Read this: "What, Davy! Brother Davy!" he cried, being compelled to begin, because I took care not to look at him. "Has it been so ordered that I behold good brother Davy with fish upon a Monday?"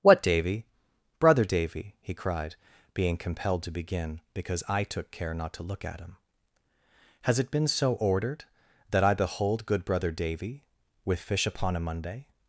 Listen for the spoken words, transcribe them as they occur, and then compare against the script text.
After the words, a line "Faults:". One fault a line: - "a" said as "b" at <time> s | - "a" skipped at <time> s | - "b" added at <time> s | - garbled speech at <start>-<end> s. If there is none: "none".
"What, Davy! Brother Davy!" he cried, being compelled to begin, because I took care not to look at him. "Has it been so ordered that I behold good brother Davy with fish upon a Monday?"
Faults:
none